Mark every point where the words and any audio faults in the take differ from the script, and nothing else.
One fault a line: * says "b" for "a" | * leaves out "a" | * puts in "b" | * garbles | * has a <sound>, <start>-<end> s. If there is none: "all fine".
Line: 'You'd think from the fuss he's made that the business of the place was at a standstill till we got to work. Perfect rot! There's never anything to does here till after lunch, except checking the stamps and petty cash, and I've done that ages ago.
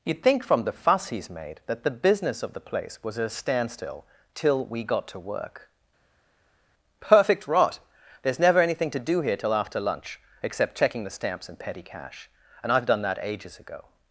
* says "do" for "does"